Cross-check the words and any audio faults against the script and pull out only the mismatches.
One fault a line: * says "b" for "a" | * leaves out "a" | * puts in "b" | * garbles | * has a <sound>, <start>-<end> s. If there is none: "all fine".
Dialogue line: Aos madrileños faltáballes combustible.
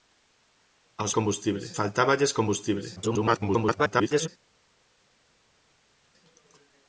* says "combustible" for "madrileños"
* garbles